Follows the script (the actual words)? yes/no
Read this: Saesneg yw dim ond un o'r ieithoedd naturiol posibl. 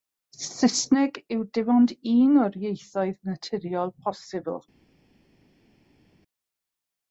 yes